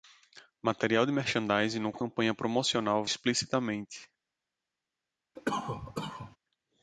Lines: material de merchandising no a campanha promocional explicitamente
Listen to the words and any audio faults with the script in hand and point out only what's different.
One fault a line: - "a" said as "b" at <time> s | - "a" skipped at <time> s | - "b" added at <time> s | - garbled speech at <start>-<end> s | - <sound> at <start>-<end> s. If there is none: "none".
- cough at 5.4-6.4 s